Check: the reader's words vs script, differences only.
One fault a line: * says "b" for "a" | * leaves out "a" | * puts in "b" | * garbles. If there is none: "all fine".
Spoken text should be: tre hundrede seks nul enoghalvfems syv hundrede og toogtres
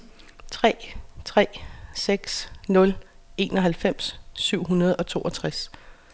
* says "tre" for "hundrede"